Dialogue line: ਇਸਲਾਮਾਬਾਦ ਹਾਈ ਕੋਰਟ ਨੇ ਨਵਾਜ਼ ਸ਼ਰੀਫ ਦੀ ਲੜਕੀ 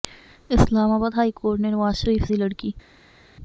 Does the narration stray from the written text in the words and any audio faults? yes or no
no